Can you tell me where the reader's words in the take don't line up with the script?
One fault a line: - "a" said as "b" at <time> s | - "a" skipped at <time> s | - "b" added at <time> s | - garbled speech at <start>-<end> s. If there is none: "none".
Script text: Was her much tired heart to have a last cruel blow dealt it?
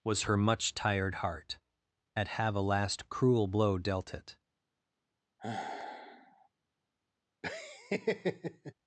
- "to" said as "at" at 2.2 s